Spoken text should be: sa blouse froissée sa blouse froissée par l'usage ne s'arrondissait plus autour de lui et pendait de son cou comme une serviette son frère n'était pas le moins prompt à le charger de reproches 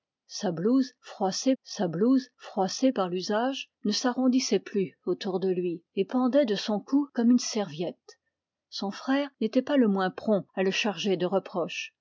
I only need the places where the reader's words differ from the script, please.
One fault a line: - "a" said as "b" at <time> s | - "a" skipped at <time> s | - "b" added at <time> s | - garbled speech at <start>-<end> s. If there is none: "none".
none